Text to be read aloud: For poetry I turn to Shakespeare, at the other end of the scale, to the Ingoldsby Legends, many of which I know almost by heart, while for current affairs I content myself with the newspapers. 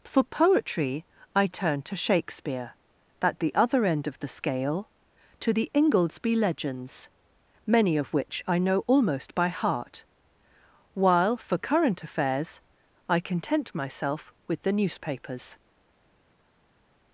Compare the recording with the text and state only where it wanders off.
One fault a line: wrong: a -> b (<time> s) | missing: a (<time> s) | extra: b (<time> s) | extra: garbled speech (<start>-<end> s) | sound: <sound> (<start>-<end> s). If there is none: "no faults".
no faults